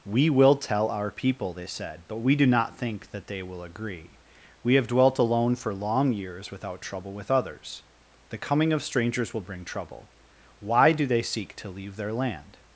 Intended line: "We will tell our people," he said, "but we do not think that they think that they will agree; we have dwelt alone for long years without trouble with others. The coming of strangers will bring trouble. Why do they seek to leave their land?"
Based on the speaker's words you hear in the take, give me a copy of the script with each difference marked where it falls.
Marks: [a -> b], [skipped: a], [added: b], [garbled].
"We will tell our people," [he -> they] said, "but we do not think that they [skipped: think that they] will agree; we have dwelt alone for long years without trouble with others. The coming of strangers will bring trouble. Why do they seek to leave their land?"